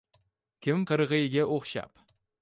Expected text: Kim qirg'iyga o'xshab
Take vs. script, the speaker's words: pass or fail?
pass